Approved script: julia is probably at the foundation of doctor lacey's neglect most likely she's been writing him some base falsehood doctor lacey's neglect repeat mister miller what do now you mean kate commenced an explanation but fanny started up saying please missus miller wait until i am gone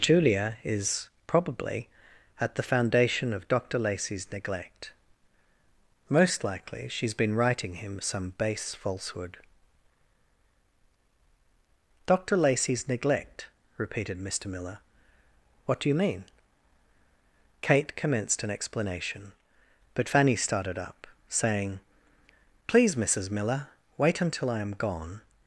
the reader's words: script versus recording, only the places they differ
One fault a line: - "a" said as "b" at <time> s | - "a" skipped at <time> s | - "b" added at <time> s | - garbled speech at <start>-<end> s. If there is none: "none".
- "repeat" said as "repeated" at 13.8 s
- "now" skipped at 15.9 s